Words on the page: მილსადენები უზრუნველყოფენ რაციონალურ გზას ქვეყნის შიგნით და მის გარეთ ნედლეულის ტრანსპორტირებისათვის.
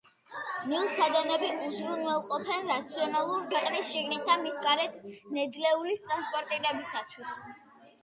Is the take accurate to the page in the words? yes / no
no